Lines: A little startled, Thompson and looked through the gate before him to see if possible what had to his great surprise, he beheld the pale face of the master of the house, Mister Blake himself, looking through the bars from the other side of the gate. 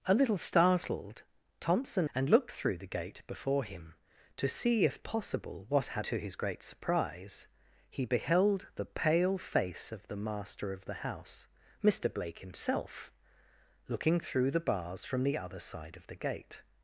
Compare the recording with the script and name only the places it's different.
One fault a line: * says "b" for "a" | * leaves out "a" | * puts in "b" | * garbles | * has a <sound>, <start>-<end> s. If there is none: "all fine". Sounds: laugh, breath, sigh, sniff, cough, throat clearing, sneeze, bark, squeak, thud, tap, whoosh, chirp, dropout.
all fine